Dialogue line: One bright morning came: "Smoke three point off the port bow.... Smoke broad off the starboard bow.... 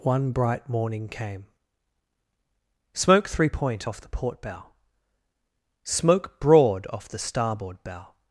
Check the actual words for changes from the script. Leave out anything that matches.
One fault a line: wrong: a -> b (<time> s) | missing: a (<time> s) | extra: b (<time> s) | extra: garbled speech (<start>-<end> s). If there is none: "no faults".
no faults